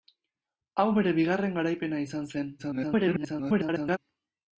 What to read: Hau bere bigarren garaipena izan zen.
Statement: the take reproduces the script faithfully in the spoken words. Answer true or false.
false